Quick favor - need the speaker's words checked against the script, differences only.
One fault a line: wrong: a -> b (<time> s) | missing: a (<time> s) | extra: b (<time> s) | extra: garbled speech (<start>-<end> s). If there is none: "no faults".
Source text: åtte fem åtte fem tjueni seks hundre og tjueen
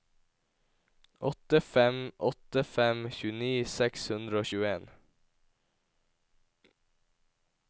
no faults